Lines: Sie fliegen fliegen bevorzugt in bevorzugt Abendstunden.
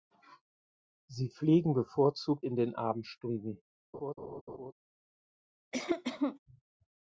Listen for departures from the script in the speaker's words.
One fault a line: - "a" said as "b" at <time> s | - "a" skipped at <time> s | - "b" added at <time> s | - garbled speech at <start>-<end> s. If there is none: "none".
- "fliegen" skipped at 1.8 s
- "bevorzugt" said as "den" at 2.6 s